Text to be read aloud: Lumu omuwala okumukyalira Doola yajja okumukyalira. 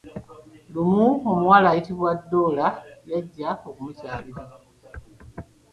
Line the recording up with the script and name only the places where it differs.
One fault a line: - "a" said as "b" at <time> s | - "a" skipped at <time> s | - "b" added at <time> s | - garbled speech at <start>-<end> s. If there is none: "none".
- "okumukyalira" said as "ayitibwa" at 1.7 s